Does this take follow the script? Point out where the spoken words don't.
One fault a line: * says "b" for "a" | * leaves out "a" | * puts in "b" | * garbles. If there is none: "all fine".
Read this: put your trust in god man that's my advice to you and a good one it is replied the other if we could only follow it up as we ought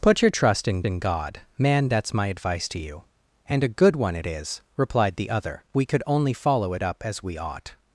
* puts in "in"
* leaves out "if"